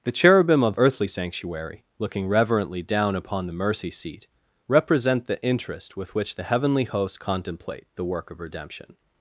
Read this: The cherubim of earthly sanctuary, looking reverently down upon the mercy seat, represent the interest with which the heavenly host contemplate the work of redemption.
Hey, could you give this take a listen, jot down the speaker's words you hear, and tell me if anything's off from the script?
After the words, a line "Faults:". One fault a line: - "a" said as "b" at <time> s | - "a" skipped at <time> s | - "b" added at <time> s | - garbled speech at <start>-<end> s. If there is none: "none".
The cherubim of earthly sanctuary, looking reverently down upon the mercy seat, represent the interest with which the heavenly host contemplate the work of redemption.
Faults:
none